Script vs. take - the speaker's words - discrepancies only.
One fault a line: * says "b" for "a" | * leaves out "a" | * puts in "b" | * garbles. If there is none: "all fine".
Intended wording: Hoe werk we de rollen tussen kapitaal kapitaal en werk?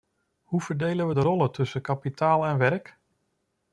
* says "verdelen" for "werk"
* leaves out "kapitaal"